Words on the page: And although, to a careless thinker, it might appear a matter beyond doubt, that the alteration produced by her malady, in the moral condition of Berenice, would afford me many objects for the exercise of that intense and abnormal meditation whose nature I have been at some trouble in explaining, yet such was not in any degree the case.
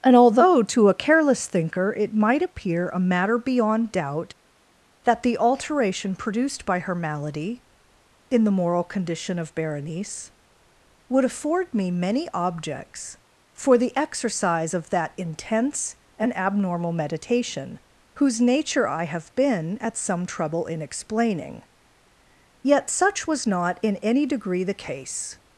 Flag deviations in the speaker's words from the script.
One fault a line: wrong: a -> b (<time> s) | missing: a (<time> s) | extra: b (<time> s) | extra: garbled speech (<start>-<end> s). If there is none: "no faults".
no faults